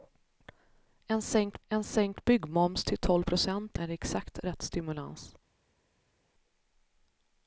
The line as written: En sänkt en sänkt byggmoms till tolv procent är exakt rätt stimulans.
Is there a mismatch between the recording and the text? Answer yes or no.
no